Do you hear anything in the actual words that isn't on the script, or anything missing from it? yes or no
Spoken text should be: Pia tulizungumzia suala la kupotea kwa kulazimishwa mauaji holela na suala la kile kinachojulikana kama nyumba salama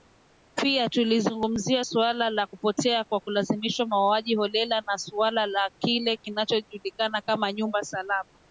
no